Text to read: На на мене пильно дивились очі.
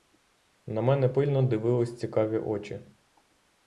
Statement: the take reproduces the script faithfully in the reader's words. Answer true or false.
false